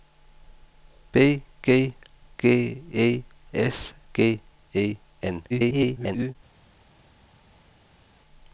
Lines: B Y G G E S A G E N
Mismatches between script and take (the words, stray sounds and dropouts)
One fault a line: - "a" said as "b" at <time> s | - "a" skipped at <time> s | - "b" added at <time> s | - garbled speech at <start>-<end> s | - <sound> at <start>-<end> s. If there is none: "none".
- "Y" skipped at 1.4 s
- "A" skipped at 3.9 s
- garbled speech at 5.5-6.4 s